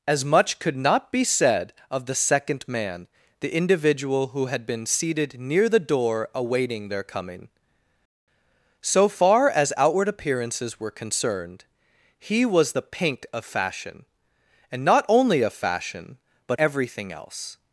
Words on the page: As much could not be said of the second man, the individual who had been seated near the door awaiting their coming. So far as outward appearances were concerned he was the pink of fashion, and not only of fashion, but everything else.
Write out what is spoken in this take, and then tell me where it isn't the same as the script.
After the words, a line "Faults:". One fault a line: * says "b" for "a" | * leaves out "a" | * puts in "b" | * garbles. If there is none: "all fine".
As much could not be said of the second man, the individual who had been seated near the door awaiting their coming. So far as outward appearances were concerned he was the pink of fashion, and not only of fashion, but everything else.
Faults:
all fine